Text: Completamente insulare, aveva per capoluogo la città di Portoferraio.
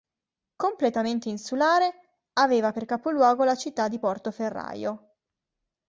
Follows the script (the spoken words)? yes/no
yes